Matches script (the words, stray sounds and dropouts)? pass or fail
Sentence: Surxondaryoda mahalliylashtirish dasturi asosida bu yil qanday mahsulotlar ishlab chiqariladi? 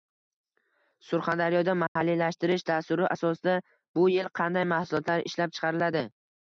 fail